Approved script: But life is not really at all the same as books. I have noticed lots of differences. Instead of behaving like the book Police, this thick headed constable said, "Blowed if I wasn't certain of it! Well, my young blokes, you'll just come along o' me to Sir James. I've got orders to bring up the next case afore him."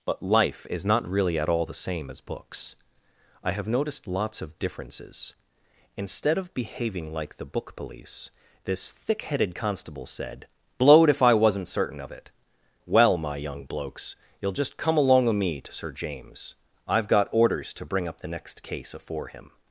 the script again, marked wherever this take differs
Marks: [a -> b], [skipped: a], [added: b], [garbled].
But life is not really at all the same as books. I have noticed lots of differences. Instead of behaving like the book Police, this thick headed constable said, "Blowed if I wasn't certain of it! Well, my young blokes, you'll just come along o' me to Sir James. I've got orders to bring up the next case afore him."